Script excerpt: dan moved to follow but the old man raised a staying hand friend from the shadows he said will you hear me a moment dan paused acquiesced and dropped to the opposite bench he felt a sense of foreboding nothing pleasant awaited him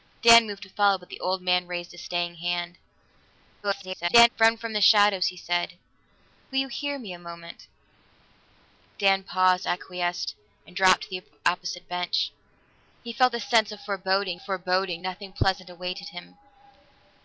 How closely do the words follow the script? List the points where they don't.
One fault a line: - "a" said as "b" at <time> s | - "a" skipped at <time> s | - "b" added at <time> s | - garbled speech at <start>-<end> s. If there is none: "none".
- garbled speech at 3.6-4.3 s
- "foreboding" added at 14.4 s